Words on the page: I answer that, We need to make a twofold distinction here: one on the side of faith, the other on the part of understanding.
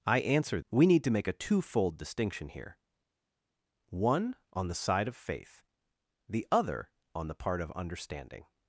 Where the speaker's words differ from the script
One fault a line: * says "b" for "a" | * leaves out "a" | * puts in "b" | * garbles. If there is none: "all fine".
* leaves out "that"